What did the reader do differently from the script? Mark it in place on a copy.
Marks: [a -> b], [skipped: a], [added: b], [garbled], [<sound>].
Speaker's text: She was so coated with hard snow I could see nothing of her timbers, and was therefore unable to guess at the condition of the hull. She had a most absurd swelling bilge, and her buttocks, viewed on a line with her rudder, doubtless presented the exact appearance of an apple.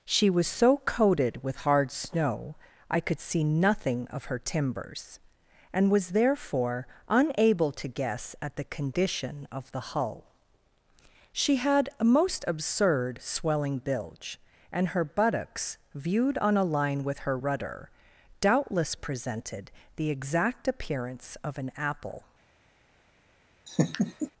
She was so coated with hard snow I could see nothing of her timbers, and was therefore unable to guess at the condition of the hull. She had a most absurd swelling bilge, and her buttocks, viewed on a line with her rudder, doubtless presented the exact appearance of an apple. [laugh]